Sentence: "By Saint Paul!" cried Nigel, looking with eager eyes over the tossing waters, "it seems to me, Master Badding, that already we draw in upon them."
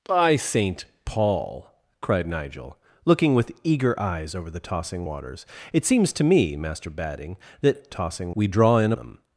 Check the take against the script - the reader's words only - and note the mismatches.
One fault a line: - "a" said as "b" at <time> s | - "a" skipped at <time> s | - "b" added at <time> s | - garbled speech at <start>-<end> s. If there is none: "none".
- "already" said as "tossing" at 7.9 s
- "upon" skipped at 8.9 s